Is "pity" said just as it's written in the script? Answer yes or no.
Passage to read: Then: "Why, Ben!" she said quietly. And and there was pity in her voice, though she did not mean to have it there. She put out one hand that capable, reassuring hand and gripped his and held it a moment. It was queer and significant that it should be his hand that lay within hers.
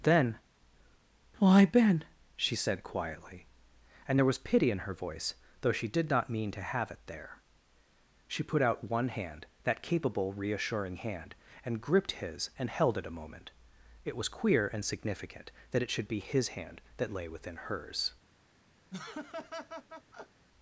yes